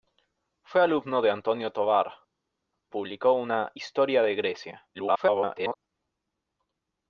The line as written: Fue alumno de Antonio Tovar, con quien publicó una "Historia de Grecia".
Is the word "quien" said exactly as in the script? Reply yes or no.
no